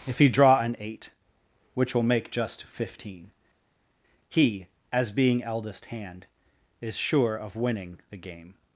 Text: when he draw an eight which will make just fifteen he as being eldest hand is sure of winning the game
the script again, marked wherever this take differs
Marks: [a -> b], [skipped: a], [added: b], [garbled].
[when -> if] he draw an eight which will make just fifteen he as being eldest hand is sure of winning the game